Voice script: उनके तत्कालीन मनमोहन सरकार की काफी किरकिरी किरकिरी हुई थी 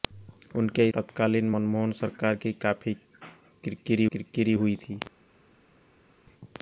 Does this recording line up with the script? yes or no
yes